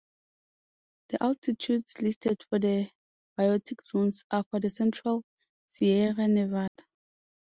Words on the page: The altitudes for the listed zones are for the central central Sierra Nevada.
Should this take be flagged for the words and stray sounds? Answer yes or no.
yes